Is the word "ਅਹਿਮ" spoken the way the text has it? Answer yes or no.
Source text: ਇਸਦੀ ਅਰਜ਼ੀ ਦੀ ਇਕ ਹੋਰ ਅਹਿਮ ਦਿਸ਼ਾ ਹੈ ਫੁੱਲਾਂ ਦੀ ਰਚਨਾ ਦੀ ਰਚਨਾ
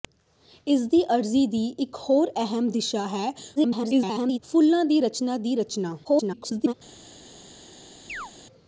yes